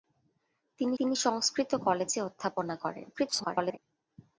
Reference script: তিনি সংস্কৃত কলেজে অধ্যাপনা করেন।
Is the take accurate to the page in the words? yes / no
no